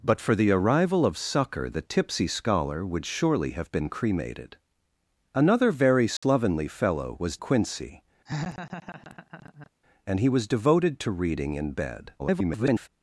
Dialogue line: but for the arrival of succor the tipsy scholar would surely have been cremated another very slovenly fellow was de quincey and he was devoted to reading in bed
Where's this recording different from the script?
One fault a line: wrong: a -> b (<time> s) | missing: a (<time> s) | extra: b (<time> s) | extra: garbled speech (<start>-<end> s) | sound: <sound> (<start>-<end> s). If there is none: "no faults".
sound: dropout (6.2-6.2 s)
missing: de (7.4 s)
sound: laugh (8.3-9.7 s)
extra: garbled speech (12.2-12.9 s)